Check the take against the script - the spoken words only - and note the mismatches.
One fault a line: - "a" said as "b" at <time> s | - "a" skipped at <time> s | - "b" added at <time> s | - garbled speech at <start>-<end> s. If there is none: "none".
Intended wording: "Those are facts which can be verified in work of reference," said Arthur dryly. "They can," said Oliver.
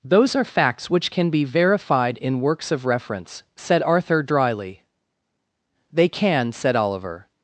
- "work" said as "works" at 2.4 s